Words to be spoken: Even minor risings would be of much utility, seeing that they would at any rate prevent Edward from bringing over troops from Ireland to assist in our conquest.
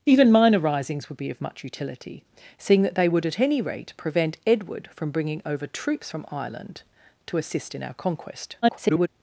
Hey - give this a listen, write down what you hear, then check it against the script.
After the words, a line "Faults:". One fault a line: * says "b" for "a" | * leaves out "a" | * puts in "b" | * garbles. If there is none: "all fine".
Even minor risings would be of much utility, seeing that they would at any rate prevent Edward from bringing over troops from Ireland to assist in our conquest. [garbled]
Faults:
* garbles